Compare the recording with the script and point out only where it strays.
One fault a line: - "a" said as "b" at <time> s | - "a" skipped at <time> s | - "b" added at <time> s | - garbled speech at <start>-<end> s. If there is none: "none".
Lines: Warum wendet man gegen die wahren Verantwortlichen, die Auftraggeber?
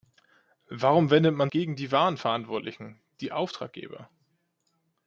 none